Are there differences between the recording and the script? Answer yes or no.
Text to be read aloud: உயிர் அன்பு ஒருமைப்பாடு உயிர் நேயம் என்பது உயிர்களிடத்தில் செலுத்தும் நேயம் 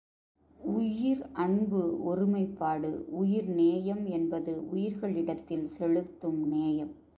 no